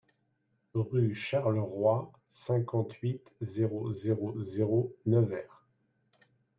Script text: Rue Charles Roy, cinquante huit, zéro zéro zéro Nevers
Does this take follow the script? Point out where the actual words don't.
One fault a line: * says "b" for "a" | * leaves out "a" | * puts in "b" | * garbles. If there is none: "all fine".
all fine